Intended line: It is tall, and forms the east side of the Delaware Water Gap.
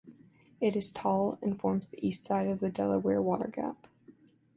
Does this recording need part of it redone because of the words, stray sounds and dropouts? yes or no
no